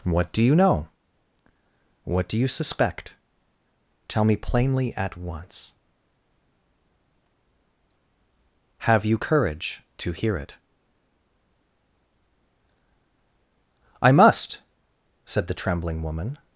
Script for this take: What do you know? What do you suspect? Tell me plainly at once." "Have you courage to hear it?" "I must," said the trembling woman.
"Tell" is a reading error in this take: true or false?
false